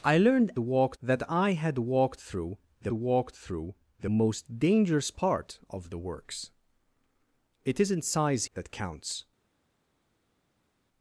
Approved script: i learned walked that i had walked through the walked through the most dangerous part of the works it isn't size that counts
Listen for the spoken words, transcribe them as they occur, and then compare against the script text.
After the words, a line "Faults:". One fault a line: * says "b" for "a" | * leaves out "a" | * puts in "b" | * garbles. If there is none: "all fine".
i learned walked that i had walked through the walked through the most dangerous part of the works it isn't size that counts
Faults:
all fine